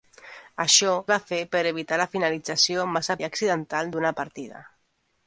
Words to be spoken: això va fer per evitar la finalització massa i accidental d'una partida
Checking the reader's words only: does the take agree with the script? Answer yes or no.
yes